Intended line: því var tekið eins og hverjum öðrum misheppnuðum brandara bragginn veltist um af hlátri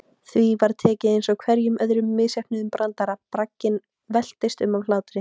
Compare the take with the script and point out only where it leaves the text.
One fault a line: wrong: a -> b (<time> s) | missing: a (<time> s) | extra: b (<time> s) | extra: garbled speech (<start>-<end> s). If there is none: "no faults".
no faults